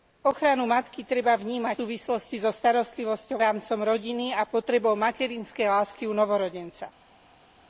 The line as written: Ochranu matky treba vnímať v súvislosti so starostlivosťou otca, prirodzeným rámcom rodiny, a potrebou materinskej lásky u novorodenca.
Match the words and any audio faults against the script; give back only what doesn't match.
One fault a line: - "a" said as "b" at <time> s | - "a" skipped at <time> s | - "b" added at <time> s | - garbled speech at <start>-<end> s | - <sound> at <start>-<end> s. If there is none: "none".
- "v" skipped at 1.8 s
- "otca prirodzeným" skipped at 3.4 s